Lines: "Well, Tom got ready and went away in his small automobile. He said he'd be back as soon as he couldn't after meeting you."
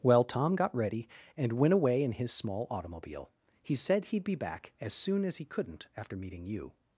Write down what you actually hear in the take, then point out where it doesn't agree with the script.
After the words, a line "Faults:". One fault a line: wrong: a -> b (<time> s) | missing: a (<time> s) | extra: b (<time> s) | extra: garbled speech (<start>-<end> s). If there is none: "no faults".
"Well, Tom got ready and went away in his small automobile. He said he'd be back as soon as he couldn't after meeting you."
Faults:
no faults